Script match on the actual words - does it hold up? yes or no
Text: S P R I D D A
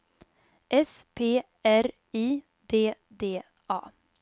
yes